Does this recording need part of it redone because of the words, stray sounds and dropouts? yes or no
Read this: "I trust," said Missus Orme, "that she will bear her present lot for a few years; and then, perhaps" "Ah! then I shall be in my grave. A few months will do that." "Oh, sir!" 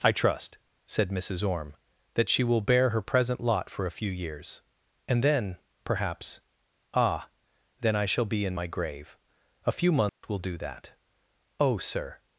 yes